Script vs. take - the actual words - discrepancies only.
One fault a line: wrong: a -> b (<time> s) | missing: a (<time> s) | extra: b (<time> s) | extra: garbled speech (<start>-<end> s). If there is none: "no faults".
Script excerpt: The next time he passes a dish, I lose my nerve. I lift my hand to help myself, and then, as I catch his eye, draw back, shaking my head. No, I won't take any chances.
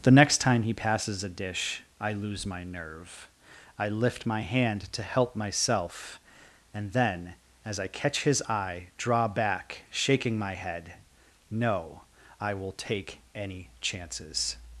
wrong: won't -> will (12.6 s)